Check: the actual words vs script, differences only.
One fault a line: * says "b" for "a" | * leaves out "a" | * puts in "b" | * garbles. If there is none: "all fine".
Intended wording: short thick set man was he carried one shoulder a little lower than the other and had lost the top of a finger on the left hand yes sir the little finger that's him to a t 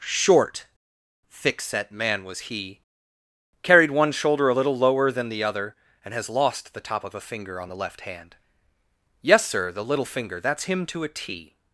* says "has" for "had"